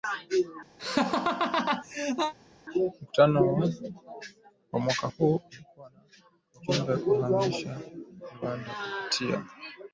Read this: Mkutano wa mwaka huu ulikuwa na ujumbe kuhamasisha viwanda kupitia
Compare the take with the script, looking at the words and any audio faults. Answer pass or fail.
fail